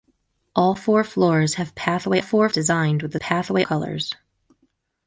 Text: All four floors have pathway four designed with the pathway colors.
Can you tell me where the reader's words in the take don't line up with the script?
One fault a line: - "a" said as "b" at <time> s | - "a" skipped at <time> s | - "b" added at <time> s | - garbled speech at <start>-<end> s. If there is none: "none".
none